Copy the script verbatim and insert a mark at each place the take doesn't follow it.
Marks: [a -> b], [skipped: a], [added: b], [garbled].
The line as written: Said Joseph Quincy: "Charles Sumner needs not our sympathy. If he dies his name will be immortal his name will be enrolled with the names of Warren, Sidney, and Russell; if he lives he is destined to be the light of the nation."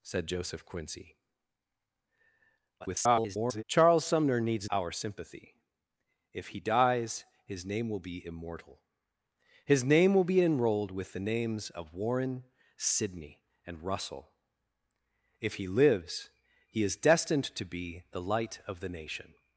Said Joseph Quincy: [garbled] "Charles Sumner needs [skipped: not] our sympathy. If he dies his name will be immortal his name will be enrolled with the names of Warren, Sidney, and Russell; if he lives he is destined to be the light of the nation."